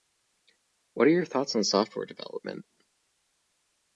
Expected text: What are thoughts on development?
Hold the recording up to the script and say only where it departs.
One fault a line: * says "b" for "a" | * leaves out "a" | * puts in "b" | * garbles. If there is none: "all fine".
* puts in "your"
* puts in "software"